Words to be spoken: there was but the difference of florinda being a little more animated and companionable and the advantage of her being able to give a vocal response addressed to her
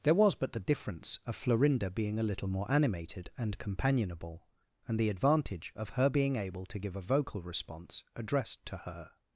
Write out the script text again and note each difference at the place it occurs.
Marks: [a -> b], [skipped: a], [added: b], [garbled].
there was but the difference of florinda being a little more animated and companionable and the advantage of her being able to give a vocal response addressed to her